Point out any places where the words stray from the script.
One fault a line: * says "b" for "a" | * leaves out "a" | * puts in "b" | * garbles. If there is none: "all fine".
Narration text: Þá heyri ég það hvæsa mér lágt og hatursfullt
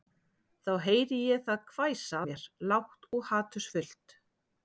all fine